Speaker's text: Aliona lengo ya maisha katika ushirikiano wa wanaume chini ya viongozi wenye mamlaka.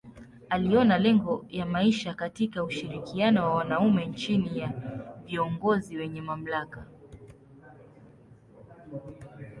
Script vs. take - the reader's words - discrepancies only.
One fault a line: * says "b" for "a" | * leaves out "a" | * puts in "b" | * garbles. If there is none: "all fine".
all fine